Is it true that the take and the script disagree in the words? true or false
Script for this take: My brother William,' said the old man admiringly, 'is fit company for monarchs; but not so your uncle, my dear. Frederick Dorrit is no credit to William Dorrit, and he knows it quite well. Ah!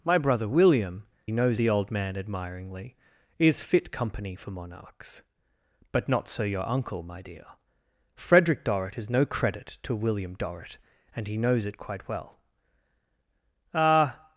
true